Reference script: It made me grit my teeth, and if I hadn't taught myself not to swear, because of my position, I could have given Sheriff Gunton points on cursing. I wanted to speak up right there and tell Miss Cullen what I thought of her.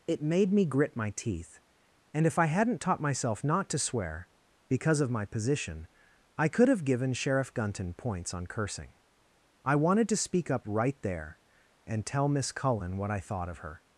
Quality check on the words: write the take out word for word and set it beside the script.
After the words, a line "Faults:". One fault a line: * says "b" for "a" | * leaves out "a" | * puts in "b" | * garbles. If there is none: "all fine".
It made me grit my teeth, and if I hadn't taught myself not to swear, because of my position, I could have given Sheriff Gunton points on cursing. I wanted to speak up right there and tell Miss Cullen what I thought of her.
Faults:
all fine